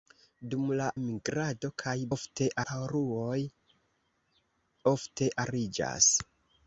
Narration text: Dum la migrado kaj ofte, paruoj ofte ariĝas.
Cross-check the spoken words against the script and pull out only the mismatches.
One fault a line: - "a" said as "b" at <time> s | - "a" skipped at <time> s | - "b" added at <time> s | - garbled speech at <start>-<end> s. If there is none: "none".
none